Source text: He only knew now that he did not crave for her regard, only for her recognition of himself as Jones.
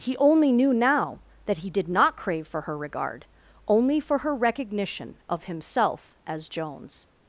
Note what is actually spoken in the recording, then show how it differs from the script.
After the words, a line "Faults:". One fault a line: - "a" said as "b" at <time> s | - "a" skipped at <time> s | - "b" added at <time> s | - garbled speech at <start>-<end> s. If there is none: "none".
He only knew now that he did not crave for her regard, only for her recognition of himself as Jones.
Faults:
none